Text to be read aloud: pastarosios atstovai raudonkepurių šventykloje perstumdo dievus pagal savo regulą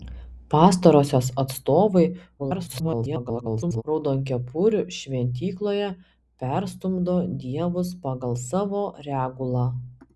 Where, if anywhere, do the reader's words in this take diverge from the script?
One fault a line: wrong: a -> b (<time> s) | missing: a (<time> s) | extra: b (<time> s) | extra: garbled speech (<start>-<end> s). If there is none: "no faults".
extra: garbled speech (2.4-3.8 s)